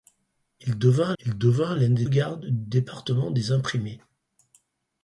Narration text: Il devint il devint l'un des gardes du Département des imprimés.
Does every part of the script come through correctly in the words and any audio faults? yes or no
yes